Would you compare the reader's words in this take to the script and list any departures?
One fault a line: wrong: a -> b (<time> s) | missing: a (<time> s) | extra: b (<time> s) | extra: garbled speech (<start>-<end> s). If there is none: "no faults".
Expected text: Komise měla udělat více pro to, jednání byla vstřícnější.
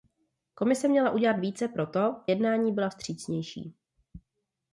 no faults